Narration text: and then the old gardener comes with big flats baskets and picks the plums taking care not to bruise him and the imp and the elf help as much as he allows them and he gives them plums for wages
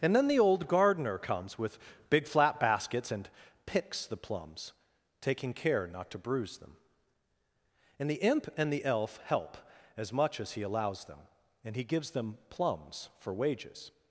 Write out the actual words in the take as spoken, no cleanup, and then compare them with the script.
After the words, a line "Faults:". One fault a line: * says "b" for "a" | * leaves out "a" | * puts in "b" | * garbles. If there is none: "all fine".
and then the old gardener comes with big flat baskets and picks the plums taking care not to bruise them and the imp and the elf help as much as he allows them and he gives them plums for wages
Faults:
* says "flat" for "flats"
* says "them" for "him"